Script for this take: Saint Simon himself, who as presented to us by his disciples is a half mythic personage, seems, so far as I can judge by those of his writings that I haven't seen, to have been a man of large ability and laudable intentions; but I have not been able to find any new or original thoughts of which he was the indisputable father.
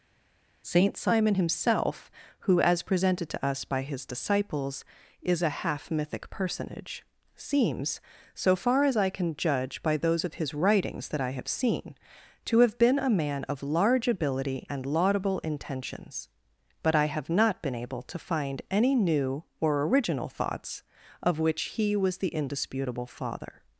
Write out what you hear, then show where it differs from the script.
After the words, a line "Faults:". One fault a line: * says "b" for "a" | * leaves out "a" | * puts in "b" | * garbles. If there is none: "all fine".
Saint Simon himself, who as presented to us by his disciples is a half mythic personage, seems, so far as I can judge by those of his writings that I have seen, to have been a man of large ability and laudable intentions; but I have not been able to find any new or original thoughts of which he was the indisputable father.
Faults:
* says "have" for "haven't"